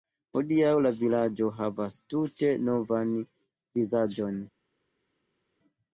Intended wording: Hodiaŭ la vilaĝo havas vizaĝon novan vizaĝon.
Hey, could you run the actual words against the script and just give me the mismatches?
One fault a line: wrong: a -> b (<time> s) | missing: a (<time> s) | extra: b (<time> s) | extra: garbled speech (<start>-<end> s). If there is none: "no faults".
wrong: vizaĝon -> tute (2.1 s)